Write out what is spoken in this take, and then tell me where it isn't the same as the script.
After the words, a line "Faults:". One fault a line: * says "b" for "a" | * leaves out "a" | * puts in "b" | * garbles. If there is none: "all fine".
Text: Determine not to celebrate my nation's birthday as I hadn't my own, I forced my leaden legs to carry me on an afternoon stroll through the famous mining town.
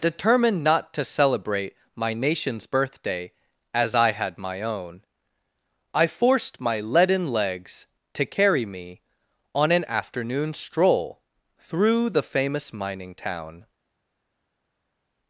Determined not to celebrate my nation's birthday as I had my own, I forced my leaden legs to carry me on an afternoon stroll through the famous mining town.
Faults:
* says "Determined" for "Determine"
* says "had" for "hadn't"